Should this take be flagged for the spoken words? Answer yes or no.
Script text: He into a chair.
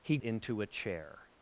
no